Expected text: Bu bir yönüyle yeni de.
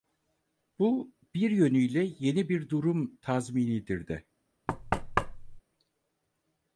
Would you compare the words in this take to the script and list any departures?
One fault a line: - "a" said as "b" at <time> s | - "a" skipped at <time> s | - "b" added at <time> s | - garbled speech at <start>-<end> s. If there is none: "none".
- "bir durum tazminidir" added at 2.5 s